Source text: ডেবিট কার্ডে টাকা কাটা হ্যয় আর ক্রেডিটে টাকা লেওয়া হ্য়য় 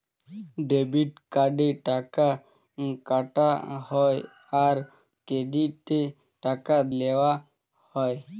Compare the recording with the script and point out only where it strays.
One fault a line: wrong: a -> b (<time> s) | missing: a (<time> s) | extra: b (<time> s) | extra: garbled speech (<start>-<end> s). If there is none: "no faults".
no faults